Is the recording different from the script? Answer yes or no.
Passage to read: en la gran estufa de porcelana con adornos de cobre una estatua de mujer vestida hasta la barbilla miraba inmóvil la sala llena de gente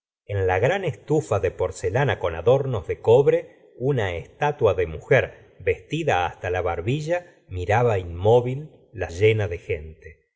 yes